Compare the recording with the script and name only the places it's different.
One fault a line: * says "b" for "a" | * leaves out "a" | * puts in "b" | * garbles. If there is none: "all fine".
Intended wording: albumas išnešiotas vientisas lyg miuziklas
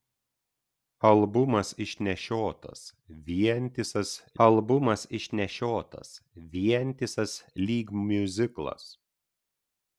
* puts in "albumas išnešiotas vientisas"